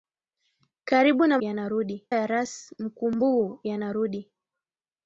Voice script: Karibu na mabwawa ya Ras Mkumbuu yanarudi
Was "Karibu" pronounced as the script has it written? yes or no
yes